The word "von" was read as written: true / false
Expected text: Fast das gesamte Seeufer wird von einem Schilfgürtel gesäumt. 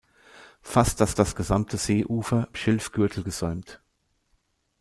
false